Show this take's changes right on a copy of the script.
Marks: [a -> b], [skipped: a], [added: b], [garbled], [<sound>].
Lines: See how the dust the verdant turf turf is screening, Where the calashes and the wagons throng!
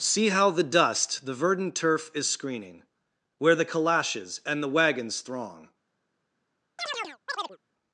See how the dust the verdant turf [skipped: turf] is screening, Where the calashes and the wagons throng! [chirp]